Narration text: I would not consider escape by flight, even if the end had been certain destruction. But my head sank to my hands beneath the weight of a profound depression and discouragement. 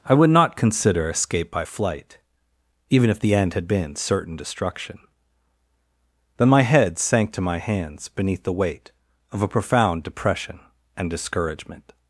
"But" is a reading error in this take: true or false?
true